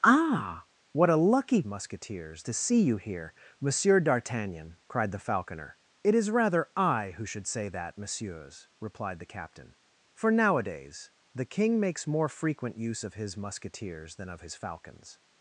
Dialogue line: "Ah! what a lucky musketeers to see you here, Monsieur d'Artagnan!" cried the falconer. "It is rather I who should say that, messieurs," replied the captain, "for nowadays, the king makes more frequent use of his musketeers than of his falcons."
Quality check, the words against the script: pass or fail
pass